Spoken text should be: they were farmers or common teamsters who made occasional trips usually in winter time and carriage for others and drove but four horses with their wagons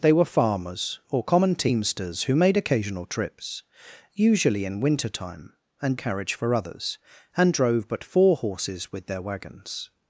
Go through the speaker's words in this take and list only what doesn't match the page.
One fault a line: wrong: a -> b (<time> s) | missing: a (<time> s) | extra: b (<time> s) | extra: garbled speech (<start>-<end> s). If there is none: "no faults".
no faults